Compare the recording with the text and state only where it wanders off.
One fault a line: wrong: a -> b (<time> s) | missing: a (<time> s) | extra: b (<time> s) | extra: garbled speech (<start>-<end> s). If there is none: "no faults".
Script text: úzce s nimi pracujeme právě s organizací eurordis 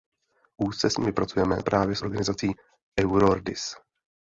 no faults